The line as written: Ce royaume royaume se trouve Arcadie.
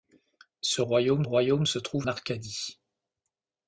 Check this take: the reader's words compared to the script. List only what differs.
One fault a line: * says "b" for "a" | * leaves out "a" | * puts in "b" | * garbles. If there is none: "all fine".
all fine